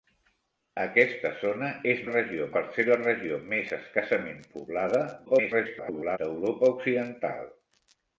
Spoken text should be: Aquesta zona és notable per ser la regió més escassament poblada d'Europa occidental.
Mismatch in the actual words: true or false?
true